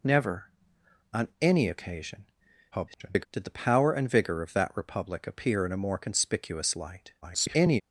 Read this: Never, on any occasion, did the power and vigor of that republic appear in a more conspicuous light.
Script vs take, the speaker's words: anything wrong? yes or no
yes